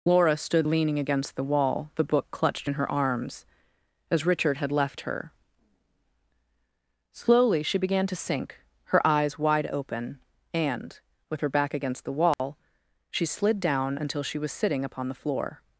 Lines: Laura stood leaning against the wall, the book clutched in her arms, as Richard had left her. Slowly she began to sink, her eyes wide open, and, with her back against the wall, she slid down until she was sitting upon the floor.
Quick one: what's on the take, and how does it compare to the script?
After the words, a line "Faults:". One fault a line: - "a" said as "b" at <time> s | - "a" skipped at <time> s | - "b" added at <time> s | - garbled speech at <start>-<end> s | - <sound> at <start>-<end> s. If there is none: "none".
Laura stood leaning against the wall, the book clutched in her arms, as Richard had left her. Slowly she began to sink, her eyes wide open, and, with her back against the wall, she slid down until she was sitting upon the floor.
Faults:
- dropout at 12.3-12.4 s